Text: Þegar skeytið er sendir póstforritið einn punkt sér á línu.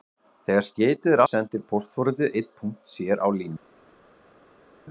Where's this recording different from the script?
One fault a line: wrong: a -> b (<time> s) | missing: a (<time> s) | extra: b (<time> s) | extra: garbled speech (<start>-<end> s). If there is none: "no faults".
no faults